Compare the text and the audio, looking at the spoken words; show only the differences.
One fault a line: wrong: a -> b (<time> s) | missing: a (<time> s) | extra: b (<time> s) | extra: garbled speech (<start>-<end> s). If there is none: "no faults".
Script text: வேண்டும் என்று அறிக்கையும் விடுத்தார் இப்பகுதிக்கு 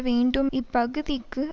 missing: என்று அறிக்கையும் விடுத்தார் (0.5 s)